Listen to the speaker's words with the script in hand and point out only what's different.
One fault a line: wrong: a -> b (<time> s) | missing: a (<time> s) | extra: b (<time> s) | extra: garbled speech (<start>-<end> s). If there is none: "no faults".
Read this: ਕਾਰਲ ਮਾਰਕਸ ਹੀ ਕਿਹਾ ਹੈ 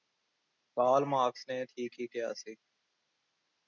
extra: ਨੇ ਠੀਕ (1.5 s)
wrong: ਹੈ -> ਸੀ (2.3 s)